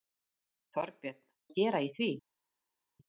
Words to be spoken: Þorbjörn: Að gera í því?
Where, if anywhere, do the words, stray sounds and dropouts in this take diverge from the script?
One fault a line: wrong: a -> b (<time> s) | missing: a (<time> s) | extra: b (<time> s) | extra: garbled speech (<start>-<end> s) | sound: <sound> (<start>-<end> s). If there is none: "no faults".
no faults